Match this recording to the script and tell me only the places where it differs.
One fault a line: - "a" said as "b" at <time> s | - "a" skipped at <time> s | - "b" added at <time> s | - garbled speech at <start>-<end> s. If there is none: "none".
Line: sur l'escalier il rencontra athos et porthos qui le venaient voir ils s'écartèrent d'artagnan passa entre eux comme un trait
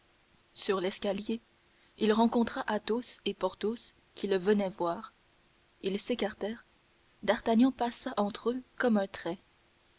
none